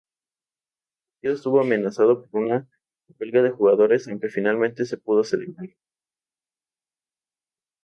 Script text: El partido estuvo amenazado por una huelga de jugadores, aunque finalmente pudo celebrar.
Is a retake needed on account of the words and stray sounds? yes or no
yes